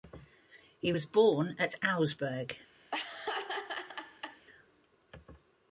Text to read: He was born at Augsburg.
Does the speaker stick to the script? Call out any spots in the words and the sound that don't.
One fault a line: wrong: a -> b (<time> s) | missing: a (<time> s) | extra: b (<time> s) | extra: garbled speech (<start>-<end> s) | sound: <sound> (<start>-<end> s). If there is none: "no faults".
sound: laugh (2.9-4.5 s)